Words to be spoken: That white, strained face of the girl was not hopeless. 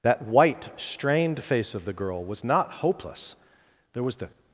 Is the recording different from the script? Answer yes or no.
yes